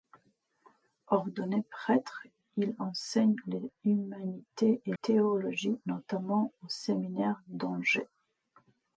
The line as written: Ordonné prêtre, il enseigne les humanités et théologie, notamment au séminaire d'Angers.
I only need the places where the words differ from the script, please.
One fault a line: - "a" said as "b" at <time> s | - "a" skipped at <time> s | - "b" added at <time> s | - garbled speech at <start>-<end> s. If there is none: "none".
none